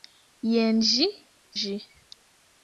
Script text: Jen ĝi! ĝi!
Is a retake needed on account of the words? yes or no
no